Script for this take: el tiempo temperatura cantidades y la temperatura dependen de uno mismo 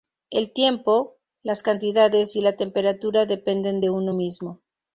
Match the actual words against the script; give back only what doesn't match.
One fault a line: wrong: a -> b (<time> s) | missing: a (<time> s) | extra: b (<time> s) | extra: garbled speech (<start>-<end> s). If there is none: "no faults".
wrong: temperatura -> las (1.4 s)